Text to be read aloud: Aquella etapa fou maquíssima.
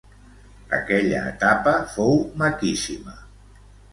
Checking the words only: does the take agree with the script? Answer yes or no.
yes